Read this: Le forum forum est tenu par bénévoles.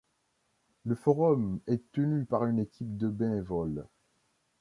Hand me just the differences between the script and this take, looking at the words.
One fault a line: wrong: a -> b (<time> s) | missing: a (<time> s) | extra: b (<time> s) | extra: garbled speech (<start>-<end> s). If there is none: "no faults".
missing: forum (1.6 s)
extra: une équipe de (2.5 s)